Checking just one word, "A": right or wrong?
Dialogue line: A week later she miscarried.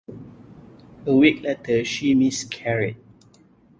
right